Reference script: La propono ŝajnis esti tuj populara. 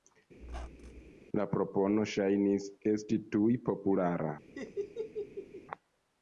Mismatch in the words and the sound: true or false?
true